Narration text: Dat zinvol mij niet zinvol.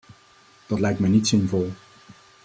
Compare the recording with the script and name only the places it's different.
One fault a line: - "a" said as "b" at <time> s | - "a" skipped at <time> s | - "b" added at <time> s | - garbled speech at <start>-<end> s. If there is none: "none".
- "zinvol" said as "lijkt" at 0.8 s